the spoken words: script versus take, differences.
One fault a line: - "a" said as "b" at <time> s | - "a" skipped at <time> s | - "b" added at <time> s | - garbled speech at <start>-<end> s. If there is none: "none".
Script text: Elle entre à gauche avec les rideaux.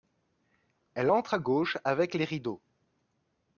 none